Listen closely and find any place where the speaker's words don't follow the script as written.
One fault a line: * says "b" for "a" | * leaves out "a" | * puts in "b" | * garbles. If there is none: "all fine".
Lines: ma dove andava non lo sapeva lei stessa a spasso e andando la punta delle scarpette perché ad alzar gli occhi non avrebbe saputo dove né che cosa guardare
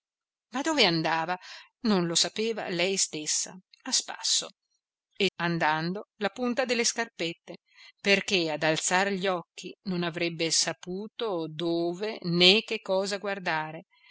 all fine